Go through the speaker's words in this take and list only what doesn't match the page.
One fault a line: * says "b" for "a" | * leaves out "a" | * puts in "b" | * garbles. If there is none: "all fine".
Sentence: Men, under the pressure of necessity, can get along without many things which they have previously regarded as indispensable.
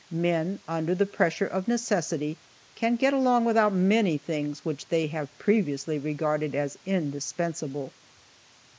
all fine